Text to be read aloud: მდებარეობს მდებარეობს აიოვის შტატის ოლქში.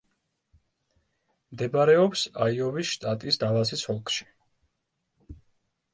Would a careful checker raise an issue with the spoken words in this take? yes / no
yes